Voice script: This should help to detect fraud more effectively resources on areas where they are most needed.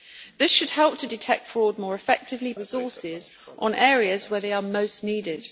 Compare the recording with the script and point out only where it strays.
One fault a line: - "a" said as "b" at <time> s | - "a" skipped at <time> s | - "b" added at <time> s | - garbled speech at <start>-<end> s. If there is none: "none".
none